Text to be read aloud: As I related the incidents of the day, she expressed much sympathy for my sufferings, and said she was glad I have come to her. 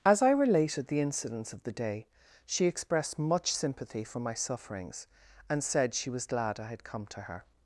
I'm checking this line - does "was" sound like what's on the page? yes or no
yes